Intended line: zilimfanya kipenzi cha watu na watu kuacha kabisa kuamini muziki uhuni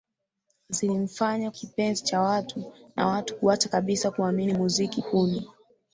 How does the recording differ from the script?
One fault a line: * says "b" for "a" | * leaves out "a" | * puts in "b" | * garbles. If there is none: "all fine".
all fine